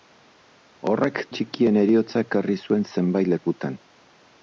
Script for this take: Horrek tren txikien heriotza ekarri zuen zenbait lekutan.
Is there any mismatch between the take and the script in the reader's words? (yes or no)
yes